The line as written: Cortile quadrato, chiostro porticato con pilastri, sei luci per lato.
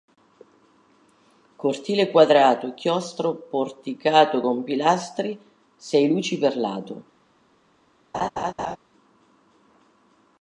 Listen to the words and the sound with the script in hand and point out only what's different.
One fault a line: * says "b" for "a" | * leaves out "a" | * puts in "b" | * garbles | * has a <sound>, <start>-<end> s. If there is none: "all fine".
* has a laugh, 8.1-8.8 s